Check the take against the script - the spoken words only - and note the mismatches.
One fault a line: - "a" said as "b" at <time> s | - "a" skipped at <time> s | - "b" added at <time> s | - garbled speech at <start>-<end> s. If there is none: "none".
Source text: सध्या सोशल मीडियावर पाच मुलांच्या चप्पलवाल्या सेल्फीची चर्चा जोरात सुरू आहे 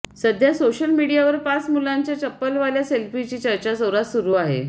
none